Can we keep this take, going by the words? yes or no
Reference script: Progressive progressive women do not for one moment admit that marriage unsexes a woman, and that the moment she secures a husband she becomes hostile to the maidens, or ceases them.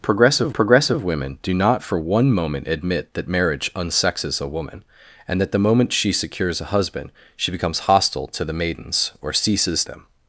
yes